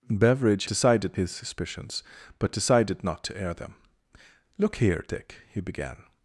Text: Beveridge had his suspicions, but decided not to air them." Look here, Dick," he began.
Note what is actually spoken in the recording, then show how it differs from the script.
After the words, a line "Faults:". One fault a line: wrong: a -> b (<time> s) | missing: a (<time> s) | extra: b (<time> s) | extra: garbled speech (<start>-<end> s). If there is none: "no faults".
Beveridge decided his suspicions, but decided not to air them." Look here, Dick," he began.
Faults:
wrong: had -> decided (0.7 s)